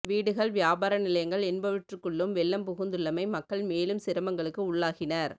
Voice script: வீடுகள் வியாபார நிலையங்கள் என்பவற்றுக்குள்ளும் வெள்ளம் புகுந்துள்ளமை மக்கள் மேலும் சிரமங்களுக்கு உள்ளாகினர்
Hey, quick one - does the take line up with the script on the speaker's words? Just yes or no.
yes